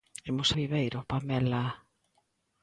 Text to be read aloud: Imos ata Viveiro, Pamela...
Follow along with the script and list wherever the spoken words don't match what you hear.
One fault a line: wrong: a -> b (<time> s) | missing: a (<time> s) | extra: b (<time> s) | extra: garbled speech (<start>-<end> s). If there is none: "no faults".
missing: ata (0.5 s)